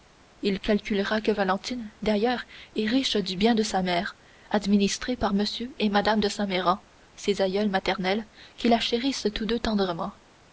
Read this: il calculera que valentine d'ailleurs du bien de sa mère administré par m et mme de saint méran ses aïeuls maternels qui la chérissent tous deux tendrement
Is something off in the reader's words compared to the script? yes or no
yes